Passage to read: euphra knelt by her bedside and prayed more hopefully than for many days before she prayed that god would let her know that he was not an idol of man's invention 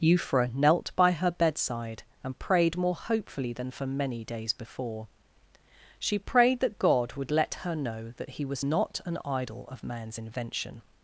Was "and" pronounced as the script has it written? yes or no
yes